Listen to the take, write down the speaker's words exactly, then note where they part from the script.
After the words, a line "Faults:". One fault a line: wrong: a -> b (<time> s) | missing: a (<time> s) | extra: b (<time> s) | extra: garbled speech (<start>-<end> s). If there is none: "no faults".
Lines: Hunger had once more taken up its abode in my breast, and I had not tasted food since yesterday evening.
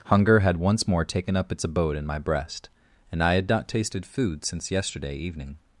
Hunger had once more taken up its abode in my breast, and I had not tasted food since yesterday evening.
Faults:
no faults